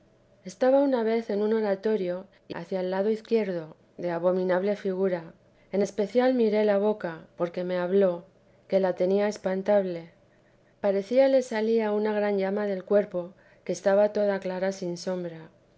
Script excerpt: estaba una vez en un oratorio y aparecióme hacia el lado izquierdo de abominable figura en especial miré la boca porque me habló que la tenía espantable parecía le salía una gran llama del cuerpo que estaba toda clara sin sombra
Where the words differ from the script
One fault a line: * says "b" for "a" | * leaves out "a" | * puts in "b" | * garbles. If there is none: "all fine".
* leaves out "aparecióme"